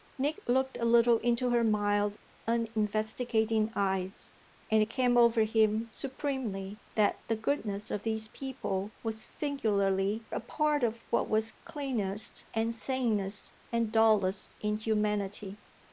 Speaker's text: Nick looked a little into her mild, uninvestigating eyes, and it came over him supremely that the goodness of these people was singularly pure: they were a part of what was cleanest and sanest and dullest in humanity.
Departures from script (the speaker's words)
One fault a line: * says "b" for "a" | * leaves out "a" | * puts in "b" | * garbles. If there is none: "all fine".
* leaves out "pure they were"